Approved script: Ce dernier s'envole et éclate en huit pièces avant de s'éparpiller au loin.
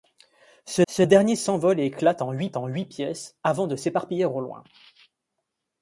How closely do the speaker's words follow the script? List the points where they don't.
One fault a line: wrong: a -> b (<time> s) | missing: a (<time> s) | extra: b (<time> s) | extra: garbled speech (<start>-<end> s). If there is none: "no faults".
extra: ce (0.9 s)
extra: en huit (2.6 s)